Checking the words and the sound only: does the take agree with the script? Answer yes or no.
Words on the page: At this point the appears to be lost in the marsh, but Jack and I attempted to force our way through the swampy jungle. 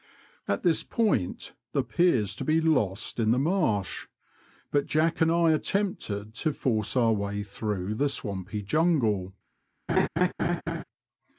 no